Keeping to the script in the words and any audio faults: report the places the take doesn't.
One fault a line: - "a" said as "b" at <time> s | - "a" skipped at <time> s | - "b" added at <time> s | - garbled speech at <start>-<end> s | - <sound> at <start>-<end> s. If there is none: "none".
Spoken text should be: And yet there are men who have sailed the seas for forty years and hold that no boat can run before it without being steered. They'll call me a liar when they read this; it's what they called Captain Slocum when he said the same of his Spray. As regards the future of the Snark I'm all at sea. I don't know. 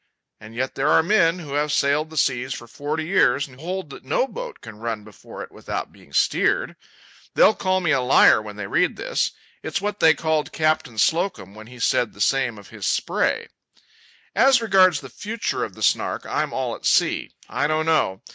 none